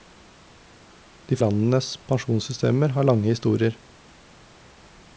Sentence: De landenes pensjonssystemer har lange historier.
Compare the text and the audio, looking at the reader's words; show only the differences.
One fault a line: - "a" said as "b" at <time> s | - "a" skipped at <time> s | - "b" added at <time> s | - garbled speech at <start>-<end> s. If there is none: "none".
none